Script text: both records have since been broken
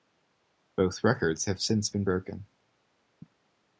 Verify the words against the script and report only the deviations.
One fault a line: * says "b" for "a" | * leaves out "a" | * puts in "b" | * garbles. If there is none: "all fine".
all fine